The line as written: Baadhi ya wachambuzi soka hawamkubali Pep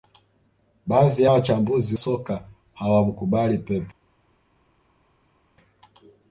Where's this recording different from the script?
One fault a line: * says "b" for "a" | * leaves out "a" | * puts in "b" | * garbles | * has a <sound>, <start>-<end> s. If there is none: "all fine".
all fine